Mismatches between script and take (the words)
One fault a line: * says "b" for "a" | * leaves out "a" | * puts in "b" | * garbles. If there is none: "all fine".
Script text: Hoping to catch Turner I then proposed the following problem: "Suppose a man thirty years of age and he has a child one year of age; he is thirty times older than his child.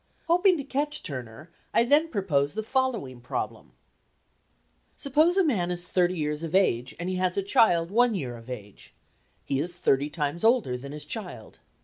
* puts in "is"